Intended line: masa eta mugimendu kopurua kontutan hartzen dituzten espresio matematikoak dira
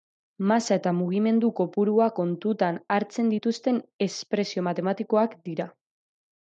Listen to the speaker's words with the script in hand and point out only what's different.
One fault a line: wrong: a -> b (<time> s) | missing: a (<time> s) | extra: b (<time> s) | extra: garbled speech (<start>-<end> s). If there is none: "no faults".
no faults